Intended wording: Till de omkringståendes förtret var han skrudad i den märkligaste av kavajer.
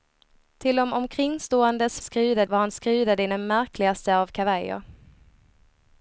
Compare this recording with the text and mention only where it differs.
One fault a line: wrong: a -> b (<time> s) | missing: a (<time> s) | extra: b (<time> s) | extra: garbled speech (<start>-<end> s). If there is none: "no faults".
wrong: förtret -> skrudad (2.0 s)